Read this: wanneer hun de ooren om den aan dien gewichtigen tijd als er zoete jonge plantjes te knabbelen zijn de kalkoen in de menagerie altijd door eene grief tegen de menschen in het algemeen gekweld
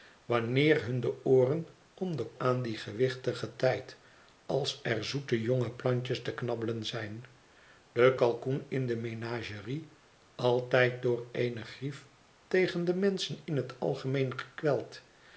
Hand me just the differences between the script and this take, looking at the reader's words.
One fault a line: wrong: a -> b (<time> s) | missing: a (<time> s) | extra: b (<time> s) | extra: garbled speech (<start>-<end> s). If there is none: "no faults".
no faults